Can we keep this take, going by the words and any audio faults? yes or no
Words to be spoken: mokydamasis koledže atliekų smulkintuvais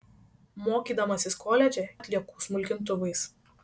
yes